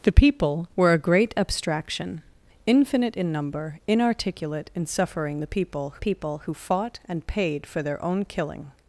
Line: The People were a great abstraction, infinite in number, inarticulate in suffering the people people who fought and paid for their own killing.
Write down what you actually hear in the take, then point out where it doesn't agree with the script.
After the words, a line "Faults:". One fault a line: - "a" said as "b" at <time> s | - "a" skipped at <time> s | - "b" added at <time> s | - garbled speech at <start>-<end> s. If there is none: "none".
The People were a great abstraction, infinite in number, inarticulate in suffering the people people who fought and paid for their own killing.
Faults:
none